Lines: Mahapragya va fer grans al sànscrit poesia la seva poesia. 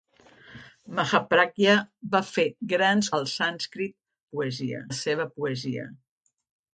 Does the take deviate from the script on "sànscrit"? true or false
false